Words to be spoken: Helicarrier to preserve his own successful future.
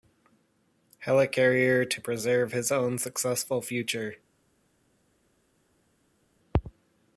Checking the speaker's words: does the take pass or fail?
pass